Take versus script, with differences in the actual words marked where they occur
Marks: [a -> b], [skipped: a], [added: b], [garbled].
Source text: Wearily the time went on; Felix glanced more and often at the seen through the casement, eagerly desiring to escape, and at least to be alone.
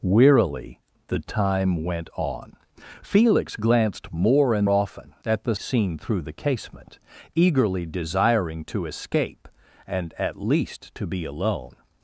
Wearily the time went on; Felix glanced more and often at the seen through the casement, eagerly desiring to escape, and at least to be alone.